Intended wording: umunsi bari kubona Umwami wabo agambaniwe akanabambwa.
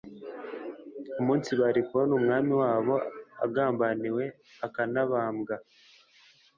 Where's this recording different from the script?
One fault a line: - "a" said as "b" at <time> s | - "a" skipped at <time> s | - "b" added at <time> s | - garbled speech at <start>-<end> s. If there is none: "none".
none